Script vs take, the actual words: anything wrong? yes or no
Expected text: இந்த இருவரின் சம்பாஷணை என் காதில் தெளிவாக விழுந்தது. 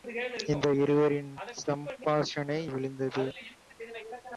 yes